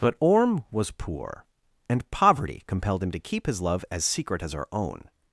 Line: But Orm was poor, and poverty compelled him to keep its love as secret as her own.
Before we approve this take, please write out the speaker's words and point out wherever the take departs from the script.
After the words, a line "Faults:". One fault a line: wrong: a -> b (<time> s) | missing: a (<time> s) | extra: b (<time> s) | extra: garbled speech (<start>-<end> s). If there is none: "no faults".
But Orm was poor, and poverty compelled him to keep his love as secret as her own.
Faults:
wrong: its -> his (3.5 s)